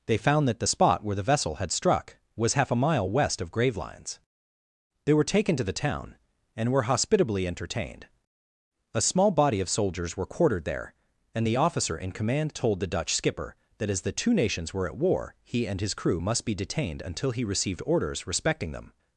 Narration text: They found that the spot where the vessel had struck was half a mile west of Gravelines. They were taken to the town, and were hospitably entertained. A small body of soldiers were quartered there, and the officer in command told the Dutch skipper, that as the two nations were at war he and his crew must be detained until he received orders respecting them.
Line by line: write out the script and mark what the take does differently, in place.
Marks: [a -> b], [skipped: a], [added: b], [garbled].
They found that the spot where the vessel had struck was half a mile west of Gravelines. They were taken to the town, and were hospitably entertained. A small body of soldiers were quartered there, and the officer in command told the Dutch skipper, that as the two nations were at war he and his crew must be detained until he received orders respecting them.